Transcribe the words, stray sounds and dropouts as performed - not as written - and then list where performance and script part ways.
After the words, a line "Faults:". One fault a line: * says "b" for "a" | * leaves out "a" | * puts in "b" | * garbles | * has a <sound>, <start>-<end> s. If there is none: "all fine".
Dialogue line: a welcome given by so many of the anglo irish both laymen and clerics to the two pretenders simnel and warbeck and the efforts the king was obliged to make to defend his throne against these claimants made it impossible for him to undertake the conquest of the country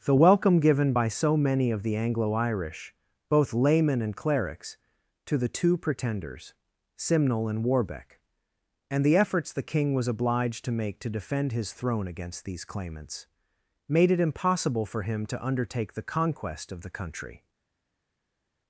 the welcome given by so many of the anglo irish both laymen and clerics to the two pretenders simnel and warbeck and the efforts the king was obliged to make to defend his throne against these claimants made it impossible for him to undertake the conquest of the country
Faults:
* says "the" for "a"